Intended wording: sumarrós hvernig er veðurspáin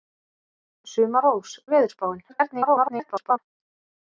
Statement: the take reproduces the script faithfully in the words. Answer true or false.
false